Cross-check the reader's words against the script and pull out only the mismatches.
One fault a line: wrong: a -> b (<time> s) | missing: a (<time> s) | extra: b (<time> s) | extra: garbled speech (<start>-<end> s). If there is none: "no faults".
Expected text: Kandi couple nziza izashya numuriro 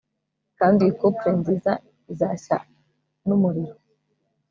extra: iyi (0.8 s)